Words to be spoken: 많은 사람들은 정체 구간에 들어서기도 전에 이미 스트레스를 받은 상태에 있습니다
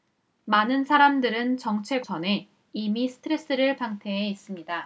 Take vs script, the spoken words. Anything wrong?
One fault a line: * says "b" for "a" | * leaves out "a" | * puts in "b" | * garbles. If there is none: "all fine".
* leaves out "구간에 들어서기도"
* leaves out "받은"